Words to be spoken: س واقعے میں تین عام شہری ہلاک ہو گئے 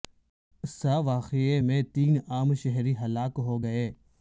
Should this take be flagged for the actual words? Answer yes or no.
no